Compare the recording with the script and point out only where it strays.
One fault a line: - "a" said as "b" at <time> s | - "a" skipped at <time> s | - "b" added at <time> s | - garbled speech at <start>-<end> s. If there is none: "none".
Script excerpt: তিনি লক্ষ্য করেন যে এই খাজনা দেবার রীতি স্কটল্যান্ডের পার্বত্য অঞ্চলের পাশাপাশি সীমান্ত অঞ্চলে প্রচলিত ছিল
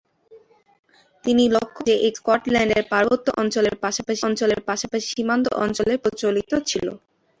- "করেন" skipped at 1.8 s
- "খাজনা দেবার রীতি স্কটল্যান্ডের পার্বত্য" said as "স্কটল্যান্ডের পার্বত্য অঞ্চলের পাশাপাশি" at 2.2 s